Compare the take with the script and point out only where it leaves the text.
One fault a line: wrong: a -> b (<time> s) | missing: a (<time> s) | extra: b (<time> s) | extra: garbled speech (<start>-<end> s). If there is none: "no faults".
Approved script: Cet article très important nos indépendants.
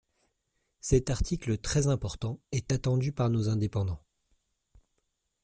extra: est attendu par (2.5 s)